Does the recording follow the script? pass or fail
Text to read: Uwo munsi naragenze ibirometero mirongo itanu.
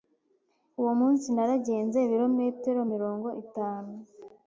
pass